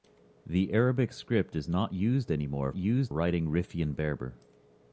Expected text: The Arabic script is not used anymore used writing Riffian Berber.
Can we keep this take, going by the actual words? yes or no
yes